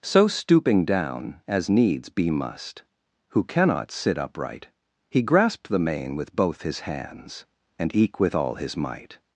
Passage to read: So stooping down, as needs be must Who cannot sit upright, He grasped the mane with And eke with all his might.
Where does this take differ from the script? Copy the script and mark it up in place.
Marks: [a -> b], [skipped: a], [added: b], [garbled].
So stooping down, as needs be must Who cannot sit upright, He grasped the mane with [added: both his hands] And eke with all his might.